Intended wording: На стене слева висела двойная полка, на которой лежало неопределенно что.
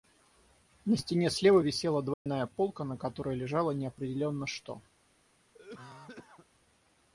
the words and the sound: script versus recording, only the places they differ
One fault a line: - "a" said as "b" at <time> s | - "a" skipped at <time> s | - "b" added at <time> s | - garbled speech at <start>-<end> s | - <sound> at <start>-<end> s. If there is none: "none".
- dropout at 2.1-2.3 s
- cough at 5.5-6.5 s